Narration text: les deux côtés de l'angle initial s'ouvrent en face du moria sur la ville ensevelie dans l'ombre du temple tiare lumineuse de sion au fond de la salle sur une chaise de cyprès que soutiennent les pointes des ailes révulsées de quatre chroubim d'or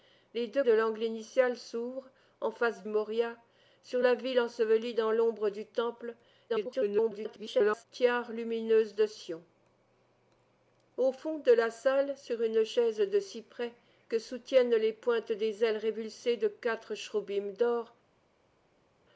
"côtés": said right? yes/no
no